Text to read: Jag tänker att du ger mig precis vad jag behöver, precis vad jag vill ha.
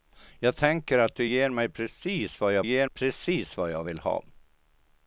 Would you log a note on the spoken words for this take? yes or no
yes